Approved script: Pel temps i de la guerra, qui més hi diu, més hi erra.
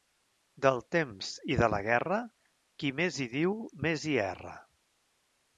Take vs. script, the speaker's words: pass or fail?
fail